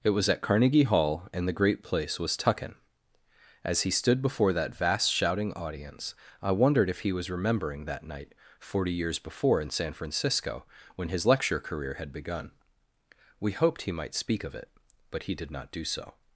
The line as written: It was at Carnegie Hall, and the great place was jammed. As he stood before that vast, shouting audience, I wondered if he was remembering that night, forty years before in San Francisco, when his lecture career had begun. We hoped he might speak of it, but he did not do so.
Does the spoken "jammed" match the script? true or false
false